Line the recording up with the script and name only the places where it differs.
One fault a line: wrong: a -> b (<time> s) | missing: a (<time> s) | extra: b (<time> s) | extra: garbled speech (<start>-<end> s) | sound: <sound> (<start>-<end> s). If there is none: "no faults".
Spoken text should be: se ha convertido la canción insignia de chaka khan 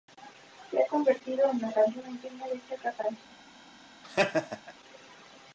extra: en (1.5 s)
sound: laugh (4.0-4.7 s)